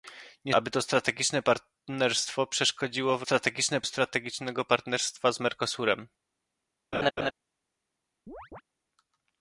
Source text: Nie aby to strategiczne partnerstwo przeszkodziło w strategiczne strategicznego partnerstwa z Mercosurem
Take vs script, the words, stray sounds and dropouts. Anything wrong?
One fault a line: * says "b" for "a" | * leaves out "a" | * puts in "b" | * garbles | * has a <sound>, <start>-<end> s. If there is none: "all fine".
* has a laugh, 6.9-7.3 s
* has a chirp, 8.3-8.6 s